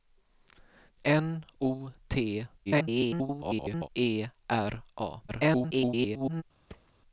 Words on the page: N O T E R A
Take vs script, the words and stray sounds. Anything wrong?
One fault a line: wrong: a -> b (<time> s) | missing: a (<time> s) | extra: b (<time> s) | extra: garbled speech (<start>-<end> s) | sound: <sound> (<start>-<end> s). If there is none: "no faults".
extra: garbled speech (2.7-3.9 s)
extra: garbled speech (5.3-6.4 s)
sound: thud (6.7-6.9 s)